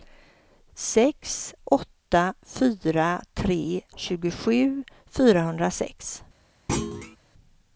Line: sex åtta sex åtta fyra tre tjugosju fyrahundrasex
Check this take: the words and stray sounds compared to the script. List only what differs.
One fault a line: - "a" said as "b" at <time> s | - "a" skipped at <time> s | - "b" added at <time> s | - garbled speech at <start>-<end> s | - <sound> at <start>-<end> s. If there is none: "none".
- "sex åtta" skipped at 2.3 s
- thud at 6.7-7.2 s